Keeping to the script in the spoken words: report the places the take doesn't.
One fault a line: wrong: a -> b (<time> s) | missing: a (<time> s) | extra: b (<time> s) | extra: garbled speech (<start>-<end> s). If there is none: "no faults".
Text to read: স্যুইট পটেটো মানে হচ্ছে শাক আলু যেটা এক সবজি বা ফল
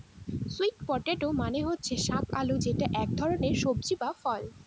extra: ধরনের (3.2 s)